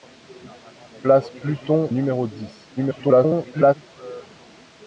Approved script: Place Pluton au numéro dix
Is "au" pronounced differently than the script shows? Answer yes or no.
yes